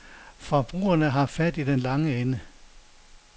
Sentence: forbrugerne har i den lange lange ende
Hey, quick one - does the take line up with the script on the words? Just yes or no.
no